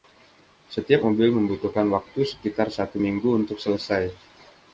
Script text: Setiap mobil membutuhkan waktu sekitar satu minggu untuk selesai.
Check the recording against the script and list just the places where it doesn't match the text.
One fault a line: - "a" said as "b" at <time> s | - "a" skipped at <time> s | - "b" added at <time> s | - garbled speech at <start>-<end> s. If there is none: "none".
none